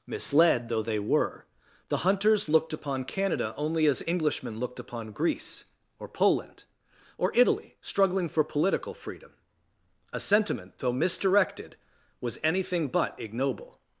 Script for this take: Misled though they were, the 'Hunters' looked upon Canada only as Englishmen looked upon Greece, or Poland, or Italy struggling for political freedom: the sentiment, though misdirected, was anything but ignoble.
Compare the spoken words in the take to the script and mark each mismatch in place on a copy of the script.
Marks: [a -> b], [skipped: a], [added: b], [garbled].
Misled though they were, the 'Hunters' looked upon Canada only as Englishmen looked upon Greece, or Poland, or Italy struggling for political freedom: [the -> a] sentiment, though misdirected, was anything but ignoble.